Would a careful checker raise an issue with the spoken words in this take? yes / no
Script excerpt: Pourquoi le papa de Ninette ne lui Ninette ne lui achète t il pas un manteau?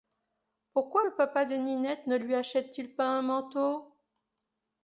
yes